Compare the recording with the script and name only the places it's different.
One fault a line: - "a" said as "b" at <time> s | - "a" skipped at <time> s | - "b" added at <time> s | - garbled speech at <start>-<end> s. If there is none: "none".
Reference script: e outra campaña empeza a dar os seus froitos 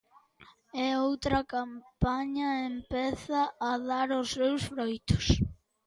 none